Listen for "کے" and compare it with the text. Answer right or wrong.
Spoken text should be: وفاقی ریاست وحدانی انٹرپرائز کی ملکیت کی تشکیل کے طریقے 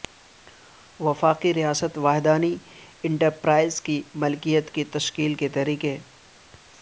right